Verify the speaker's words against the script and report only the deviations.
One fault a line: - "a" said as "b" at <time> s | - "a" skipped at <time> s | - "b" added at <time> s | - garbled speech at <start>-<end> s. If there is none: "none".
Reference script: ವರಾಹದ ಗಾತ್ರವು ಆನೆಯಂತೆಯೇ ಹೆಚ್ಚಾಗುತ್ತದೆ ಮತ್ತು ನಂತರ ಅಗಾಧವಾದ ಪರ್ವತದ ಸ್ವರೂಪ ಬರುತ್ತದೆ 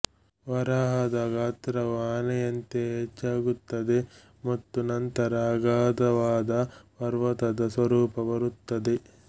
none